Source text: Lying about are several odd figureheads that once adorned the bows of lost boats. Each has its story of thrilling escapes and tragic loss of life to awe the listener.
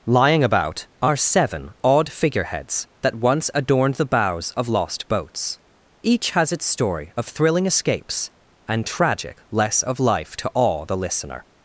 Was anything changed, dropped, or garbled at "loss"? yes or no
yes